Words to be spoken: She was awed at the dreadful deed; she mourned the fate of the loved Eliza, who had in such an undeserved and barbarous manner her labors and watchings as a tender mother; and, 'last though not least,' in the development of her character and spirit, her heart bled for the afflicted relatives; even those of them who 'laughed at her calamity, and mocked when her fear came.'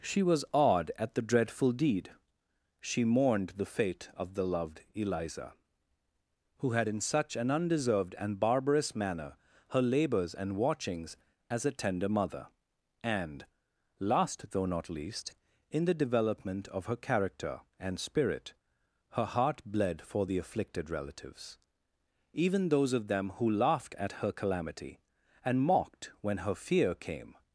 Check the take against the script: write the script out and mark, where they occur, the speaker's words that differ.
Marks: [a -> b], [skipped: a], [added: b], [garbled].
She was awed at the dreadful deed; she mourned the fate of the loved Eliza, who had in such an undeserved and barbarous manner her labors and watchings as a tender mother; and, 'last though not least,' in the development of her character and spirit, her heart bled for the afflicted relatives; even those of them who 'laughed at her calamity, and mocked when her fear came.'